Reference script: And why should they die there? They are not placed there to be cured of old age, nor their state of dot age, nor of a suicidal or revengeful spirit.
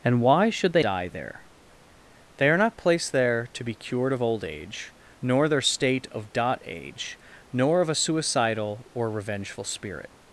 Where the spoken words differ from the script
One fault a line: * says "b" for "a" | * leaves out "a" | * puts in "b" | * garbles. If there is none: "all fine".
all fine